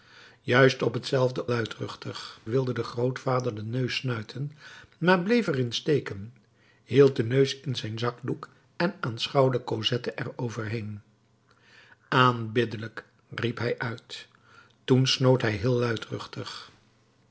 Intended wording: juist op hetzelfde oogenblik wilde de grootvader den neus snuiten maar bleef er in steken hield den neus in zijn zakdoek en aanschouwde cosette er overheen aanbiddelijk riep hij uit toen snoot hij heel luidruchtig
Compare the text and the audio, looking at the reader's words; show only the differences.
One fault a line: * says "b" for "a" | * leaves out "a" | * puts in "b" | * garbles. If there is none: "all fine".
* says "luidruchtig" for "oogenblik"